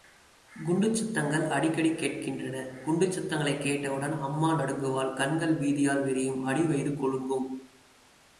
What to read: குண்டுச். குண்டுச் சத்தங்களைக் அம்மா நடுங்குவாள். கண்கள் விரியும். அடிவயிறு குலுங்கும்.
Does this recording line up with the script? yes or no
no